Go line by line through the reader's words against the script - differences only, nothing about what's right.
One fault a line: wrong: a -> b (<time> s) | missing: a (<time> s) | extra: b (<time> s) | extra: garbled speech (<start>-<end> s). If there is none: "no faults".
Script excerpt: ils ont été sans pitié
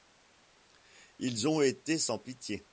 no faults